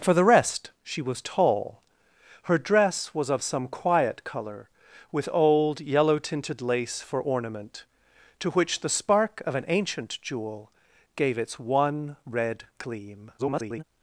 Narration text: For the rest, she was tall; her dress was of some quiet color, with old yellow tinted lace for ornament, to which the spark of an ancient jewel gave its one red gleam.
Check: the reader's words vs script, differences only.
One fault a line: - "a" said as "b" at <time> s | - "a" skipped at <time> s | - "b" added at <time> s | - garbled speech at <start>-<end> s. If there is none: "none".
- garbled speech at 13.4-13.8 s